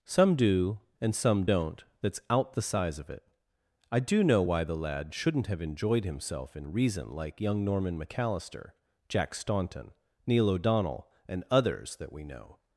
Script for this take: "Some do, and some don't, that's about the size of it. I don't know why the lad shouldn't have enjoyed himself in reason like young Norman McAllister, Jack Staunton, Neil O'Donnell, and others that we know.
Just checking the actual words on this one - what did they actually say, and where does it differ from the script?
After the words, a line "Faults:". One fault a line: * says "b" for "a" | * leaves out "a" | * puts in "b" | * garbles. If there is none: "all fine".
"Some do, and some don't, that's out the size of it. I do know why the lad shouldn't have enjoyed himself in reason like young Norman McAllister, Jack Staunton, Neil O'Donnell, and others that we know.
Faults:
* says "out" for "about"
* says "do" for "don't"